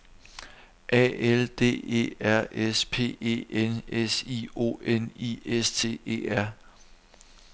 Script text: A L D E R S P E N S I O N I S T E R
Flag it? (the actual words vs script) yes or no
no